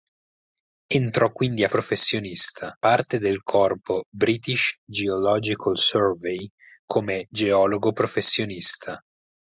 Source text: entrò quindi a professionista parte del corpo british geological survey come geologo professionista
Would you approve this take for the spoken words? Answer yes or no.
yes